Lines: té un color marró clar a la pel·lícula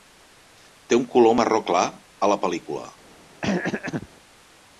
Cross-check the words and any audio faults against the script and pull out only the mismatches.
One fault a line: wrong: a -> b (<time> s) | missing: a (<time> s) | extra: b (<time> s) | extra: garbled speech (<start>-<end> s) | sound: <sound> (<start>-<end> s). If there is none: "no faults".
sound: throat clearing (3.4-4.1 s)